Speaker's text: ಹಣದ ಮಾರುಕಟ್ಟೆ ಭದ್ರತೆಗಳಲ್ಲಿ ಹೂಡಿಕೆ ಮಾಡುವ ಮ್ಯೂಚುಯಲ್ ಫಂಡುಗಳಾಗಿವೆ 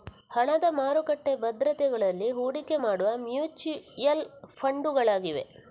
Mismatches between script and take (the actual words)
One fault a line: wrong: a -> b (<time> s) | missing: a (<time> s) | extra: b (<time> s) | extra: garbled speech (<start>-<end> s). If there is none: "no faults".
no faults